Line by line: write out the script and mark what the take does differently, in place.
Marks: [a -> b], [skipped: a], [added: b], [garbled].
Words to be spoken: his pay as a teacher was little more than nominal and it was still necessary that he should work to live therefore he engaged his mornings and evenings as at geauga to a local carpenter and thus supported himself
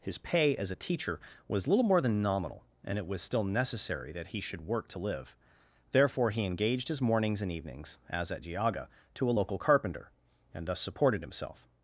his pay as a teacher was little more than nominal and it was still necessary that he should work to live therefore he engaged his mornings and evenings as at geauga to a local carpenter and thus supported himself